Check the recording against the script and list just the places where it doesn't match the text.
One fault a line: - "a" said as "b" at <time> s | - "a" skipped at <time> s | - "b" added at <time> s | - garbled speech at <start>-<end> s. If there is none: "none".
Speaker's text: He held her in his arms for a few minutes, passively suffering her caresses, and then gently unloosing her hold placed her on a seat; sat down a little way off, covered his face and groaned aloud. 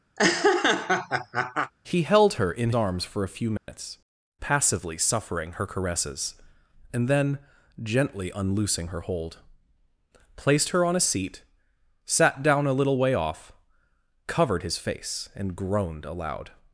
- "his" skipped at 2.7 s